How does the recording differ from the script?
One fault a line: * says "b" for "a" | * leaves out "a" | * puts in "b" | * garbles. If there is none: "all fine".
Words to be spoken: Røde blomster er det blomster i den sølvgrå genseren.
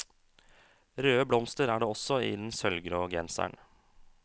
* says "også" for "blomster"